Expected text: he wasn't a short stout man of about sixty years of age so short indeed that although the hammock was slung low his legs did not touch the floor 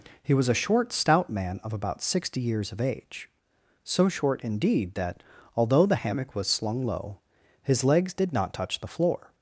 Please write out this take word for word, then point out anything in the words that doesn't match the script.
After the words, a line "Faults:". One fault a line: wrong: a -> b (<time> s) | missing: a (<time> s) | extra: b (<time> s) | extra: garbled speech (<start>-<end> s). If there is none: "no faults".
he was a short stout man of about sixty years of age so short indeed that although the hammock was slung low his legs did not touch the floor
Faults:
wrong: wasn't -> was (0.3 s)